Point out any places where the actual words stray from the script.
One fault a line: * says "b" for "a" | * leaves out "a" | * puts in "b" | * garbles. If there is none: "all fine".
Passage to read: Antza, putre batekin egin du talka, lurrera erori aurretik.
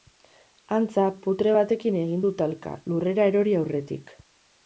all fine